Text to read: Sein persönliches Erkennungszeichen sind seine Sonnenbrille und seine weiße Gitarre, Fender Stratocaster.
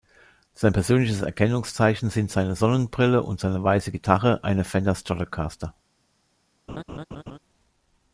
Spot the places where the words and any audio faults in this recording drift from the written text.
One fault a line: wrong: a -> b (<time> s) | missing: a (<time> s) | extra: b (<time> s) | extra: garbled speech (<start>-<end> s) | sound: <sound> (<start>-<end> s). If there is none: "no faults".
extra: eine (4.4 s)
sound: laugh (6.7-7.4 s)